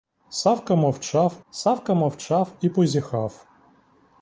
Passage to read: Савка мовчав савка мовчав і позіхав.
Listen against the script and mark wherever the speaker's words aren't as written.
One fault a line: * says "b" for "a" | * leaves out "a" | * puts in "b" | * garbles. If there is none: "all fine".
all fine